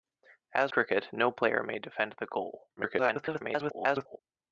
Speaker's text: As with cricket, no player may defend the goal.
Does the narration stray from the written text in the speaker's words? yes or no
yes